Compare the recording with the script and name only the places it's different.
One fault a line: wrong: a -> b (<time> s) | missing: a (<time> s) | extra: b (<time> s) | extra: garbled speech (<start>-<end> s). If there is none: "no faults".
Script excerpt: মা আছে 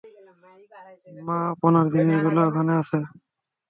extra: আপনার জিনিসগুলো ওখানে (1.5 s)